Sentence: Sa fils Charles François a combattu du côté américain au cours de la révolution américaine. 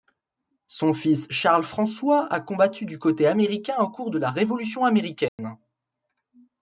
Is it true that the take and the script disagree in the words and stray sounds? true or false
true